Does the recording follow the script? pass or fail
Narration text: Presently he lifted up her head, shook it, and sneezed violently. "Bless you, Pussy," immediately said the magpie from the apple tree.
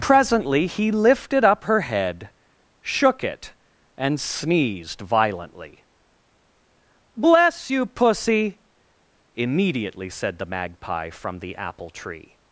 pass